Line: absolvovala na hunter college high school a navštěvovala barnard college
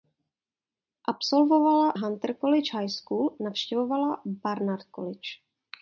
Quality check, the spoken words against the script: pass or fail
fail